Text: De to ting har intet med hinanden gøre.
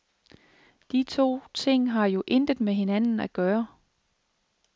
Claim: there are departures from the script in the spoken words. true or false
true